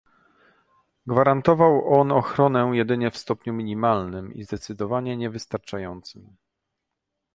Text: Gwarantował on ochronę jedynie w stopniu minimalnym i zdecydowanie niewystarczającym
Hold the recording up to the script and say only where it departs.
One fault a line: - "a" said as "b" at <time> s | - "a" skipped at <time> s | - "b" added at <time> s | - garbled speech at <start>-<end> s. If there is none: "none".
none